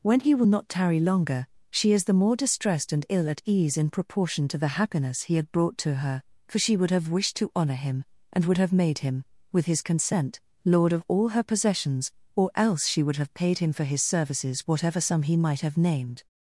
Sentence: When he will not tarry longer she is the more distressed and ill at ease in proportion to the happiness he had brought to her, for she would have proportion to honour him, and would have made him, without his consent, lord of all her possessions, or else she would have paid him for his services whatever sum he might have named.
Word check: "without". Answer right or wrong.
wrong